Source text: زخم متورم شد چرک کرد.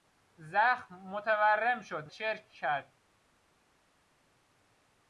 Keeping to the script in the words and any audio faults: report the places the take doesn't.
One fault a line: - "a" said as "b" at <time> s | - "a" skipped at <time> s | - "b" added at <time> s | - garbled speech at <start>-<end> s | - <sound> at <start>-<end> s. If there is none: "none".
none